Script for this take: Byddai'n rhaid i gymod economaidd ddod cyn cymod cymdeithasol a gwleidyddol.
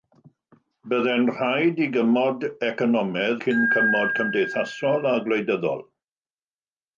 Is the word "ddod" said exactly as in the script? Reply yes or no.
no